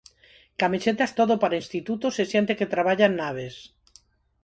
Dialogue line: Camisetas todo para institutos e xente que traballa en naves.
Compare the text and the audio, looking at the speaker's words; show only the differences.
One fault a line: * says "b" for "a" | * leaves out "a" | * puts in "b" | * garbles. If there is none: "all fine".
all fine